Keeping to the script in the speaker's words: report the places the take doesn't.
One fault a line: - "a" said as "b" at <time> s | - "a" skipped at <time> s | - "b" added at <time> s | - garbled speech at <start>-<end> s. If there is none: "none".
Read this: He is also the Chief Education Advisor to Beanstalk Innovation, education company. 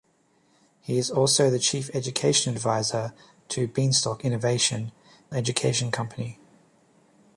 none